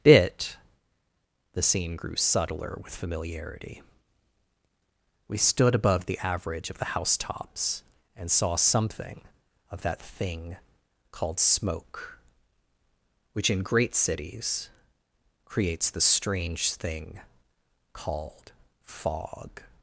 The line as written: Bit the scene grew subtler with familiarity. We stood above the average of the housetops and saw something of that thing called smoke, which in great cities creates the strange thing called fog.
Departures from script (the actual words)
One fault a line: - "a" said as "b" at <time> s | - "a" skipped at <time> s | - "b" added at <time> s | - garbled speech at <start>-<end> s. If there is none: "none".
none